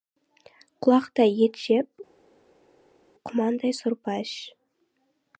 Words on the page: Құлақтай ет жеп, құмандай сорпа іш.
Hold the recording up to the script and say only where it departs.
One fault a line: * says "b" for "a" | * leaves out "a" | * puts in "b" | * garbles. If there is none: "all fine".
all fine